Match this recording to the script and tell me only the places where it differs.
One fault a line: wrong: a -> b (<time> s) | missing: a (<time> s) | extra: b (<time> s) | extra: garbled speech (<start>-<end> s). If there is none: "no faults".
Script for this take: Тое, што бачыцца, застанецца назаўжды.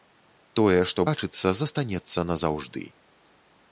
no faults